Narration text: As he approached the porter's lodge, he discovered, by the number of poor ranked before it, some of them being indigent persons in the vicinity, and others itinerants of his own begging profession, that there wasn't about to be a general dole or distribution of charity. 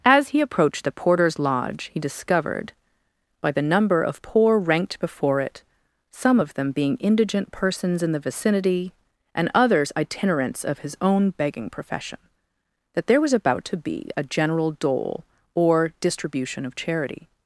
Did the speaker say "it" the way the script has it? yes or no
yes